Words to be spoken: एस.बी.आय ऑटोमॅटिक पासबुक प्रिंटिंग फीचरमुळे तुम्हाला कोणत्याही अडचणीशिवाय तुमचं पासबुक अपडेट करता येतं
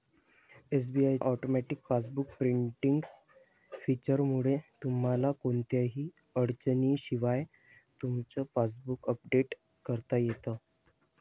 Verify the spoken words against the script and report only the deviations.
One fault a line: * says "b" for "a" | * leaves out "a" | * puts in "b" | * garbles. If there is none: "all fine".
all fine